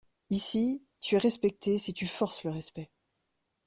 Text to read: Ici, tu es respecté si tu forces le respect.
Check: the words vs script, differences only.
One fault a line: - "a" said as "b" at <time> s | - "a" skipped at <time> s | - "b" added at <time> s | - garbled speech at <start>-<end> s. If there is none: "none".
none